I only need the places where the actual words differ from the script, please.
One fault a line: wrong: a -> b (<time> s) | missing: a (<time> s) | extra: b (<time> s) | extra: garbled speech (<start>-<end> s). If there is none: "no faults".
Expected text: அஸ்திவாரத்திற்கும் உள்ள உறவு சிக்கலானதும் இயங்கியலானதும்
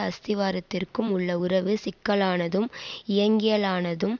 no faults